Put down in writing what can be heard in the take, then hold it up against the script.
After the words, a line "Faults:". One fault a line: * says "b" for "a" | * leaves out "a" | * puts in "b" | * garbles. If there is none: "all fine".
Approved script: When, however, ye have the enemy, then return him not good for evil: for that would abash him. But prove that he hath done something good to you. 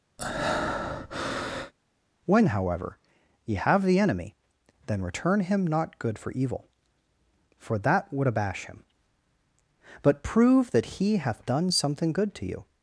When, however, ye have the enemy, then return him not good for evil: for that would abash him. But prove that he hath done something good to you.
Faults:
all fine